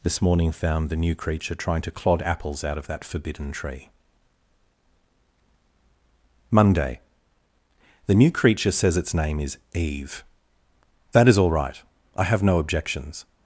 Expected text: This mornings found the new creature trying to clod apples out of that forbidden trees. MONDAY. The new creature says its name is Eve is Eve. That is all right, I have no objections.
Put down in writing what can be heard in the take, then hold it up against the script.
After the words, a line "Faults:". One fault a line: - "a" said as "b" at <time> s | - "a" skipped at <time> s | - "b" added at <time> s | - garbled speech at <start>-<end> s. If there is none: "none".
This morning found the new creature trying to clod apples out of that forbidden tree. MONDAY. The new creature says its name is Eve. That is all right, I have no objections.
Faults:
- "mornings" said as "morning" at 0.2 s
- "trees" said as "tree" at 3.5 s
- "is Eve" skipped at 10.2 s